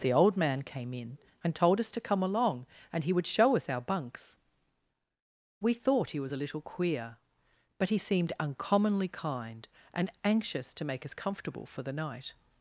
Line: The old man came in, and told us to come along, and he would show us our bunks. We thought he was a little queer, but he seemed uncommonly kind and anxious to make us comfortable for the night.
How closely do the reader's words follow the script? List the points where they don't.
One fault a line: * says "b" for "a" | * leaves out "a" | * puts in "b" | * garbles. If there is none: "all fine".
all fine